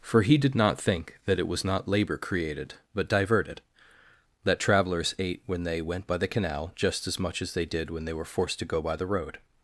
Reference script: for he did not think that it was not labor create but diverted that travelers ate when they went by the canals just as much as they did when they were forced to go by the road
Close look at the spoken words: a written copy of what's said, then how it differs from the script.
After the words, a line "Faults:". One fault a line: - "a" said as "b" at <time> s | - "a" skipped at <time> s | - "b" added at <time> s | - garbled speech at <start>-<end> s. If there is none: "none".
for he did not think that it was not labor created but diverted that travelers ate when they went by the canal just as much as they did when they were forced to go by the road
Faults:
- "create" said as "created" at 2.2 s
- "canals" said as "canal" at 6.3 s